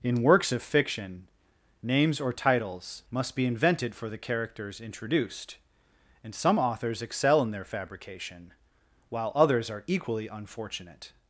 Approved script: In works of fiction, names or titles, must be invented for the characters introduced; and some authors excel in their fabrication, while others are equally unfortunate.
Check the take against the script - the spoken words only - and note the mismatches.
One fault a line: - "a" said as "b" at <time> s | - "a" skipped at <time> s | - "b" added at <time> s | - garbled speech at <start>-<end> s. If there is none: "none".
none